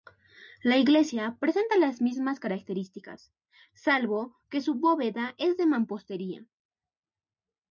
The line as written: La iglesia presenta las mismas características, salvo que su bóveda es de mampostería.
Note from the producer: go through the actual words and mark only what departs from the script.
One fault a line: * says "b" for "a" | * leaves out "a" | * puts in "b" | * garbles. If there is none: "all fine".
all fine